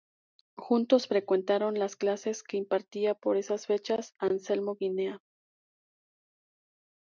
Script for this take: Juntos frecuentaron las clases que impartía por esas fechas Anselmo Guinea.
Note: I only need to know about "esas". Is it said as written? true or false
true